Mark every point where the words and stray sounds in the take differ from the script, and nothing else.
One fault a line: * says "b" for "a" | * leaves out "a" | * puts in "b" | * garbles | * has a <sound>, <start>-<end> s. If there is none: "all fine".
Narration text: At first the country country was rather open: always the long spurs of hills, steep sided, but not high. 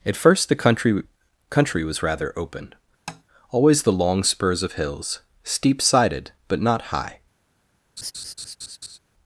* has a tap, 3.1-3.2 s
* has a laugh, 8.0-9.0 s